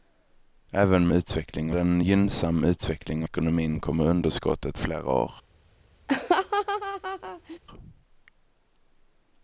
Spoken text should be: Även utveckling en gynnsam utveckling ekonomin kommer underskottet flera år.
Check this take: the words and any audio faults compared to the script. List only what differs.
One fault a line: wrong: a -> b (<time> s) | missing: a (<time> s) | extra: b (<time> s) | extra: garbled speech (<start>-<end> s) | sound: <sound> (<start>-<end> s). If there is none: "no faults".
sound: laugh (6.1-7.6 s)